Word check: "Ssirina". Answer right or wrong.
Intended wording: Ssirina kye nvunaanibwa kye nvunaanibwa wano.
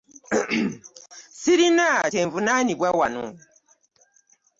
right